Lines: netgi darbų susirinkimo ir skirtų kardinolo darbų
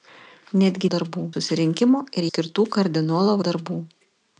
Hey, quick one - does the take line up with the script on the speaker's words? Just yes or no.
yes